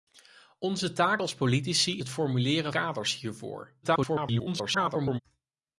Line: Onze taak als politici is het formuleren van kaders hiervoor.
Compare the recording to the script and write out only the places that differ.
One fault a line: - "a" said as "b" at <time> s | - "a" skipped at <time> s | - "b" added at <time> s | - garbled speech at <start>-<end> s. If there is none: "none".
- "is" skipped at 2.0 s
- "van" skipped at 2.7 s
- garbled speech at 3.8-5.2 s